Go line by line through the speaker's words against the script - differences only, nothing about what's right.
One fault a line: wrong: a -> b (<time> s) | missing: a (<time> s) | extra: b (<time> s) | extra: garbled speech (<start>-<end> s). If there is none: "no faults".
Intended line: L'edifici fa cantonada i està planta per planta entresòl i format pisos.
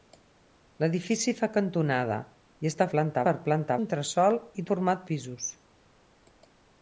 no faults